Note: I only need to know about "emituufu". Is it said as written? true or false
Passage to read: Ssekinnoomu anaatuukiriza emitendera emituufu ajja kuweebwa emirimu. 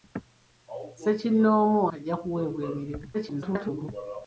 false